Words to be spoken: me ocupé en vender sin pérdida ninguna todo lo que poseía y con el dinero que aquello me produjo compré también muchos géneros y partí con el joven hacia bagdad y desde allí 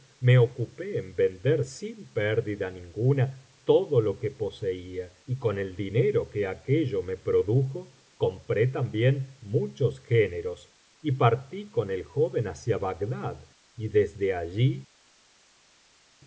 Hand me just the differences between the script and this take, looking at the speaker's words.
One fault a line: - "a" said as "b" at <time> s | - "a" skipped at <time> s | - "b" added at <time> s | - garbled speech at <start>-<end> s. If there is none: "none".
none